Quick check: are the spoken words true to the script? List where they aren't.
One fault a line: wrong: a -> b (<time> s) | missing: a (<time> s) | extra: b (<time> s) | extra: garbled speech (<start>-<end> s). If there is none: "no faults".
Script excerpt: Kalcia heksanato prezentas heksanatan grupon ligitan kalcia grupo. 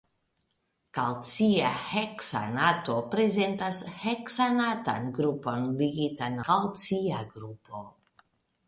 no faults